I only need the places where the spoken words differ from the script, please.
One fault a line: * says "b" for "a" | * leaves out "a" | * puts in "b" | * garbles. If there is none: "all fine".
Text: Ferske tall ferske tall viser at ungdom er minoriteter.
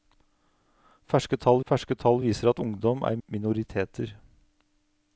all fine